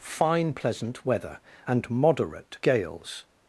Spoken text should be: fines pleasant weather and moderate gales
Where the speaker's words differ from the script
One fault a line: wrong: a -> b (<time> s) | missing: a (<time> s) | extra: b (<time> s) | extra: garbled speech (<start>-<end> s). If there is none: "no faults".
wrong: fines -> fine (0.0 s)